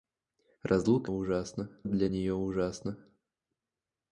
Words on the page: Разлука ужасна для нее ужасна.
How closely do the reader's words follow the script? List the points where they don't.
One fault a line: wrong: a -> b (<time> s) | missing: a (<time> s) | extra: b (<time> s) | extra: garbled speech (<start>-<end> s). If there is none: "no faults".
no faults